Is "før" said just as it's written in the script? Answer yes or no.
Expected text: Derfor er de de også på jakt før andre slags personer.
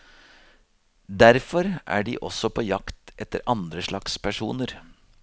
no